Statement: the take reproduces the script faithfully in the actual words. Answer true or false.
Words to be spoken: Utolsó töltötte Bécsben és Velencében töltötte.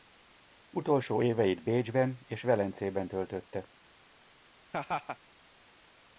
false